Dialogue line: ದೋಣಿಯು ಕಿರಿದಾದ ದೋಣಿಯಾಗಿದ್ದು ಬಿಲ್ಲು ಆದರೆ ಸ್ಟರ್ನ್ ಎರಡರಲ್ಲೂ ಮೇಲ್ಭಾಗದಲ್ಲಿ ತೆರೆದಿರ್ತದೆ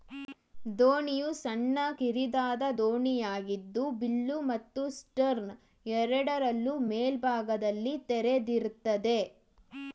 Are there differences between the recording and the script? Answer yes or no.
yes